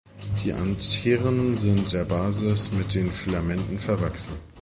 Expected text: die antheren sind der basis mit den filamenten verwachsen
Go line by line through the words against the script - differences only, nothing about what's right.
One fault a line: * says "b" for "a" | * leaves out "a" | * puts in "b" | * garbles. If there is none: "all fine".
all fine